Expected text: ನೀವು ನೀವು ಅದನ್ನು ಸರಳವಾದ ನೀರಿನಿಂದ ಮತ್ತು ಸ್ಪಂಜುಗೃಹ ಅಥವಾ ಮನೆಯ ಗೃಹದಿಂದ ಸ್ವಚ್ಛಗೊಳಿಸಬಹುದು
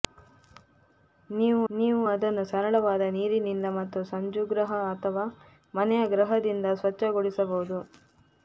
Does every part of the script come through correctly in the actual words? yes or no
yes